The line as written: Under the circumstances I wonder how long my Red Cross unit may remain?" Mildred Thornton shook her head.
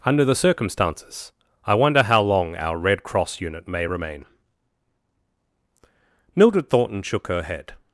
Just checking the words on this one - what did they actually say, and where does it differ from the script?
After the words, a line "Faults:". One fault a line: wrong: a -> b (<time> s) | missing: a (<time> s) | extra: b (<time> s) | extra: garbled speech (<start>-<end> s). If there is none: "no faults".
Under the circumstances I wonder how long our Red Cross unit may remain?" Mildred Thornton shook her head.
Faults:
wrong: my -> our (2.5 s)